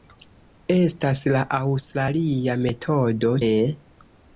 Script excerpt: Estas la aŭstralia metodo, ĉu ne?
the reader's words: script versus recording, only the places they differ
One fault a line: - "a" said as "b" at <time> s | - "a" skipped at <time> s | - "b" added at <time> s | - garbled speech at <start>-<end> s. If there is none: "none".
- "ĉu" skipped at 3.4 s